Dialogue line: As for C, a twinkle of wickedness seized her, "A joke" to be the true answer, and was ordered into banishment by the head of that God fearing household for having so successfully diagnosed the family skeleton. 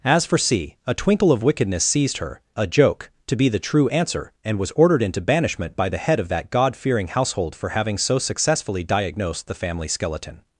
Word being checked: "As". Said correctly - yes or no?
yes